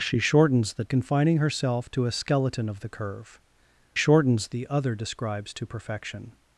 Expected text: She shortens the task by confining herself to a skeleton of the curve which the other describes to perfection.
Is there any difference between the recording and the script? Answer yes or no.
yes